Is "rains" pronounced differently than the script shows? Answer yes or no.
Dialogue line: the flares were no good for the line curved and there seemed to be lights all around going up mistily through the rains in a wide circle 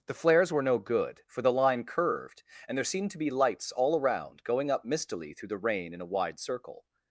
yes